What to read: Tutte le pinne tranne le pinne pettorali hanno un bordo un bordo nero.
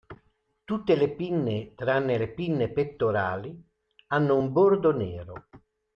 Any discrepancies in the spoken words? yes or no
yes